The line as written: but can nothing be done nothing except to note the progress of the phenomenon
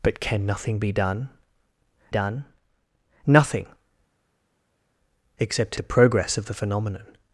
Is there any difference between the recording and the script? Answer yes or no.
yes